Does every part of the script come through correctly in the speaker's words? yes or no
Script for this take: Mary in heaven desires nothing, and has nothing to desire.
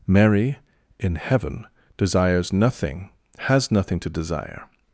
no